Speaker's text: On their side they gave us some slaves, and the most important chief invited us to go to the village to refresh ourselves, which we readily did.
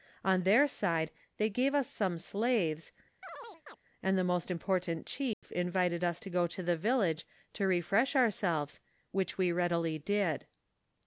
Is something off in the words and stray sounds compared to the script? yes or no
yes